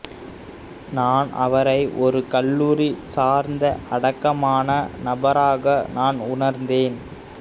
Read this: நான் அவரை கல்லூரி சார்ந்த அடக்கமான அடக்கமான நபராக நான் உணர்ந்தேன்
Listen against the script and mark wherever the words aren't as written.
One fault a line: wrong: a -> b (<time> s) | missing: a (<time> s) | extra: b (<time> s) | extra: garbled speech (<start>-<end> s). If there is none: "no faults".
extra: ஒரு (2.0 s)
missing: அடக்கமான (4.7 s)